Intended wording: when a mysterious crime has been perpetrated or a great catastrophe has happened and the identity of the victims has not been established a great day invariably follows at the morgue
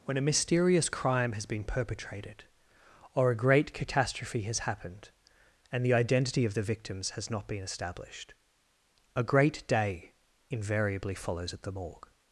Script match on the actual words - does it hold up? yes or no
yes